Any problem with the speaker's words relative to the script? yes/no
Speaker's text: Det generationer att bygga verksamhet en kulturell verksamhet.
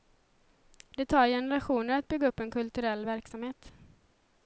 yes